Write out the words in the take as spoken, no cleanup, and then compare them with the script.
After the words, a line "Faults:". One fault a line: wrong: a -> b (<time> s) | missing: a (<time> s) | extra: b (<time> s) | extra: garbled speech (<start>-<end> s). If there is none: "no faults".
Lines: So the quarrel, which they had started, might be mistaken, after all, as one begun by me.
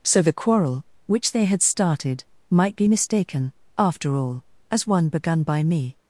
So the quarrel, which they had started, might be mistaken, after all, as one begun by me.
Faults:
no faults